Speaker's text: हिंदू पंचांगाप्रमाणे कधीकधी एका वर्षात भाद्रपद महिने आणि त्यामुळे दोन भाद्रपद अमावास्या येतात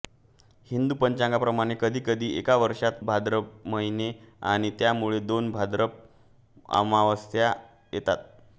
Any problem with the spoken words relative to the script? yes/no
no